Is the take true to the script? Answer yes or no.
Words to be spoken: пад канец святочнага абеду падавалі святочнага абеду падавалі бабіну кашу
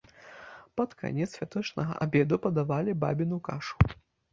no